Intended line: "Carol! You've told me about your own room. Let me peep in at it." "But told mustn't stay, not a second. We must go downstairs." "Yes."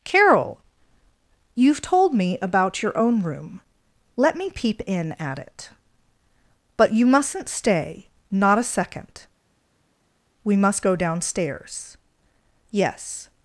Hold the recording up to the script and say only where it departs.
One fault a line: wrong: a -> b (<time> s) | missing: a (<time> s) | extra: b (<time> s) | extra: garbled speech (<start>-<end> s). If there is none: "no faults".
wrong: told -> you (6.9 s)